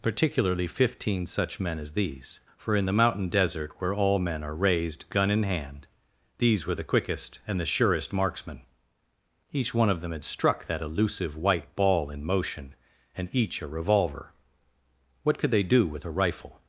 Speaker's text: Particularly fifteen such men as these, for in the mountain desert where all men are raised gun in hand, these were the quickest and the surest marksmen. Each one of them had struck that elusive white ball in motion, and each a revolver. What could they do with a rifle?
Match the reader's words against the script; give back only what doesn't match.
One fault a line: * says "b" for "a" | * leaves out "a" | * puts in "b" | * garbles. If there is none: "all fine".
all fine